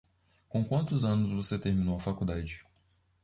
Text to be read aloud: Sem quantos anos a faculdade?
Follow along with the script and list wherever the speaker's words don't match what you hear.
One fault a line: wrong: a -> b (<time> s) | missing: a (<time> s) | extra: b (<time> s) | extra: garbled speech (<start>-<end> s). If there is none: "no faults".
wrong: Sem -> Com (0.5 s)
extra: você terminou (1.3 s)